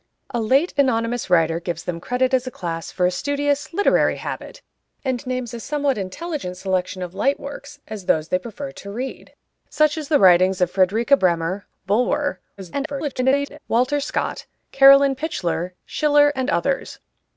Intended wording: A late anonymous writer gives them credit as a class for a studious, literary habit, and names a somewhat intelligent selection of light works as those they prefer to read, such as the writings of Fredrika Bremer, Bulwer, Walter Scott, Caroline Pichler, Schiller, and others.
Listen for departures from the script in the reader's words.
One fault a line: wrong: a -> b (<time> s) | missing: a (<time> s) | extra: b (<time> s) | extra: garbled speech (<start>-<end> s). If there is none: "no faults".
extra: garbled speech (12.6-13.6 s)